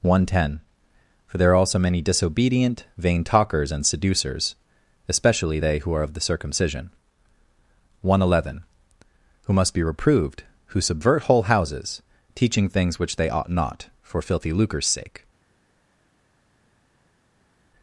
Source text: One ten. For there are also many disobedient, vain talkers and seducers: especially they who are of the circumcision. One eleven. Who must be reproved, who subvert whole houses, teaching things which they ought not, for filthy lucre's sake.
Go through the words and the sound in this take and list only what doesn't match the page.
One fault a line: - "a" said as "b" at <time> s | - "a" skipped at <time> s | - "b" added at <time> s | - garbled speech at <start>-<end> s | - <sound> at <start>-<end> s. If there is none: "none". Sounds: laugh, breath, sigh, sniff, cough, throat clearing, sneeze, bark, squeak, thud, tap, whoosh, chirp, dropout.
none